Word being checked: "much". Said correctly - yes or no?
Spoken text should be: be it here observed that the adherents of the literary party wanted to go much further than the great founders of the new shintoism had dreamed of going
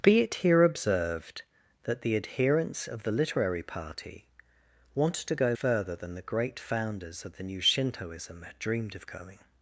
no